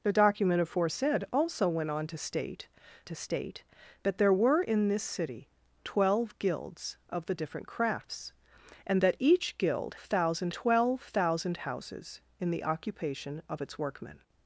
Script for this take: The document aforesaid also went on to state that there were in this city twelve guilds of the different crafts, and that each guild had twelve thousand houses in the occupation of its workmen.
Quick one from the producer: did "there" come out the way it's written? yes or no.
yes